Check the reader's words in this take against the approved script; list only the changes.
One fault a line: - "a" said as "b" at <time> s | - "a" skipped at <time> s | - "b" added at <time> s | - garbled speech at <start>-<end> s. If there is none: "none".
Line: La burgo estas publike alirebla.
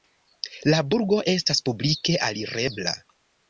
none